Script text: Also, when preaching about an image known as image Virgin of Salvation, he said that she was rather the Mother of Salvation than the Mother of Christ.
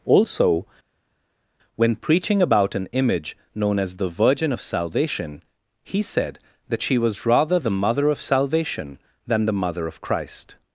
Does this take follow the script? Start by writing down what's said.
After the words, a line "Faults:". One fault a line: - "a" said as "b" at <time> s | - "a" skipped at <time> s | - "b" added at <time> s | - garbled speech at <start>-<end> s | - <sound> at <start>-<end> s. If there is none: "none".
Also, when preaching about an image known as the Virgin of Salvation, he said that she was rather the Mother of Salvation than the Mother of Christ.
Faults:
- "image" said as "the" at 4.0 s